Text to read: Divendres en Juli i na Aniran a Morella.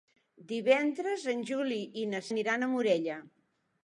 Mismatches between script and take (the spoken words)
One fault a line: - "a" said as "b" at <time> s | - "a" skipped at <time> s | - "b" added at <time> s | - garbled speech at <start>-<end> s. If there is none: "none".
none